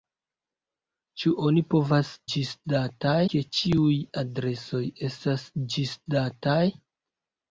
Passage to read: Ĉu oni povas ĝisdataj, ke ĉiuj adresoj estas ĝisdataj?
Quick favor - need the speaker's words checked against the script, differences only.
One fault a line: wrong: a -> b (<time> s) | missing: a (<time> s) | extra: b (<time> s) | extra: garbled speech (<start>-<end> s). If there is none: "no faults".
no faults